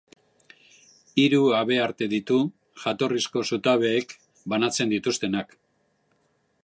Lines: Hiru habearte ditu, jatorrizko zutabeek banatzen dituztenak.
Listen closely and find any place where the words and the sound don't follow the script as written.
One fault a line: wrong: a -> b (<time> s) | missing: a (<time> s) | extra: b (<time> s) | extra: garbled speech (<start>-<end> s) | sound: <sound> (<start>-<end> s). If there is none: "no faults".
no faults